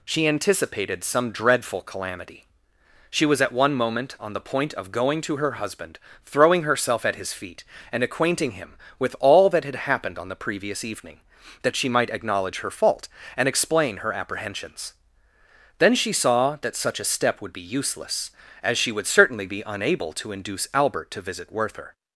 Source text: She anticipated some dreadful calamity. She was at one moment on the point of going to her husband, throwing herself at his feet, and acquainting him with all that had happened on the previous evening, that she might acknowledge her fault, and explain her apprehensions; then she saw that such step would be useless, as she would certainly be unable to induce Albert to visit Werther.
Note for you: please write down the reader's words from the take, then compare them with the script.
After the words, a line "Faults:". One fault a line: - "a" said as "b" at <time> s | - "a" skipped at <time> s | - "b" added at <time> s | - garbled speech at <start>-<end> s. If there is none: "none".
She anticipated some dreadful calamity. She was at one moment on the point of going to her husband, throwing herself at his feet, and acquainting him with all that had happened on the previous evening, that she might acknowledge her fault, and explain her apprehensions; then she saw that such a step would be useless, as she would certainly be unable to induce Albert to visit Werther.
Faults:
- "a" added at 17.0 s